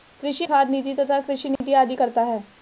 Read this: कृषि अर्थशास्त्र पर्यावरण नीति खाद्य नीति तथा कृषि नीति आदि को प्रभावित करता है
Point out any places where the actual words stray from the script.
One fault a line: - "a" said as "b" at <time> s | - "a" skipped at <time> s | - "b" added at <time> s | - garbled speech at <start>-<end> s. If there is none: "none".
- "अर्थशास्त्र पर्यावरण नीति" skipped at 0.5 s
- "को प्रभावित" skipped at 2.0 s